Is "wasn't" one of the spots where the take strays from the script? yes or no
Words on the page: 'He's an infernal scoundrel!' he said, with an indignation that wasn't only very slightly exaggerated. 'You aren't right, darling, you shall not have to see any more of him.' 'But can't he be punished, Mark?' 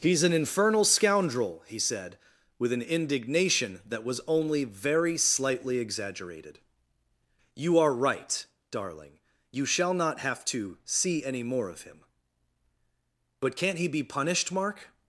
yes